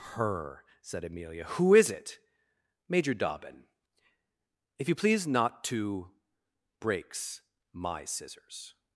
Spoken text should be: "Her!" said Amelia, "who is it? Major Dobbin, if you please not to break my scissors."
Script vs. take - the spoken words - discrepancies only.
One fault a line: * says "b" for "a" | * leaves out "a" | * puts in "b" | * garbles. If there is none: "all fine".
* says "breaks" for "break"